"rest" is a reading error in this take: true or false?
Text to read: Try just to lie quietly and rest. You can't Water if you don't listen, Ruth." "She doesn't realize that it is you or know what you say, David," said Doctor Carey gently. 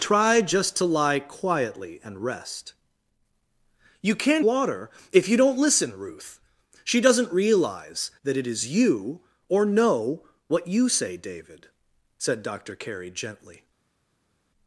false